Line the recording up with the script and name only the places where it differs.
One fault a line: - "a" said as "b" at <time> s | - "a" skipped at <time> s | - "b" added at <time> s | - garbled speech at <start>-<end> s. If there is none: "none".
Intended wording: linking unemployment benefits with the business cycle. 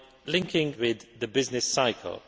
- "unemployment benefits" skipped at 0.8 s